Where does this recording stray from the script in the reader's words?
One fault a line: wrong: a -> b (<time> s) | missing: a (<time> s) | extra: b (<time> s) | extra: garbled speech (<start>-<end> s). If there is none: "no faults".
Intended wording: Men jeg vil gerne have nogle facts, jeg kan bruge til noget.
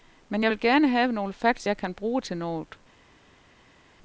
no faults